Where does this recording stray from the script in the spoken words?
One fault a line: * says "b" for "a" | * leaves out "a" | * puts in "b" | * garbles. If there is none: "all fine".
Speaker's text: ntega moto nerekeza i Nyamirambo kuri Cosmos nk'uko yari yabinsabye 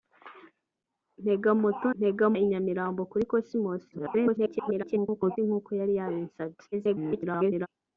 * says "ntega" for "nerekeza"
* garbles
* garbles